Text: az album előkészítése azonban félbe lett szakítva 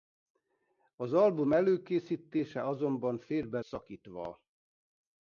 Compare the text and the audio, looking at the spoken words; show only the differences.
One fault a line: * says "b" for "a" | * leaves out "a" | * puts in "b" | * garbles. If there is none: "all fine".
* leaves out "lett"